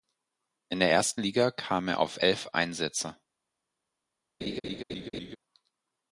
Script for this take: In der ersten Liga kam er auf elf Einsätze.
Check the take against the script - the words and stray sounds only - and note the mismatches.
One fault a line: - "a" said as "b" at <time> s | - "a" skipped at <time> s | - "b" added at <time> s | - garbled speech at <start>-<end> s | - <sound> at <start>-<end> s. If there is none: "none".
- laugh at 4.4-5.4 s